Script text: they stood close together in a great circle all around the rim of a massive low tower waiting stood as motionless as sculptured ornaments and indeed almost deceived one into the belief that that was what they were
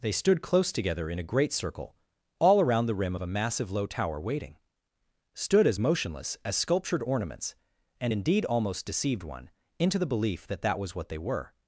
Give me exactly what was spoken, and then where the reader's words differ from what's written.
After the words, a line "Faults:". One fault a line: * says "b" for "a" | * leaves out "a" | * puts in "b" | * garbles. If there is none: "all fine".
they stood close together in a great circle all around the rim of a massive low tower waiting stood as motionless as sculptured ornaments and indeed almost deceived one into the belief that that was what they were
Faults:
all fine